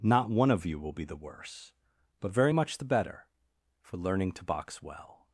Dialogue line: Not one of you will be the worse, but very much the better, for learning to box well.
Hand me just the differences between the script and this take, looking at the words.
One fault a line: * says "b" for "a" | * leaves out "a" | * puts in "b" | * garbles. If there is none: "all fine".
all fine